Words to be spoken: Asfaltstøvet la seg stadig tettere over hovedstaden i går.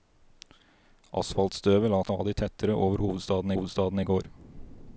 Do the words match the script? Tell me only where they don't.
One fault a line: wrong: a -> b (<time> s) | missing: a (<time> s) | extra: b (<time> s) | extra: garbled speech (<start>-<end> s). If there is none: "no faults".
missing: seg (2.0 s)
extra: hovedstaden (3.5 s)